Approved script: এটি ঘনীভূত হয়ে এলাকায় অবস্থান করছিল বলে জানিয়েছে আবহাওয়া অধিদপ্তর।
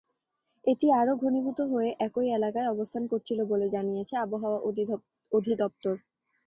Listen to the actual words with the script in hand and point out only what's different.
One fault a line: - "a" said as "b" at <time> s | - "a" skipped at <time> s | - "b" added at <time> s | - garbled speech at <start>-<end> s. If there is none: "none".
- "আরও" added at 1.0 s
- "একই" added at 2.0 s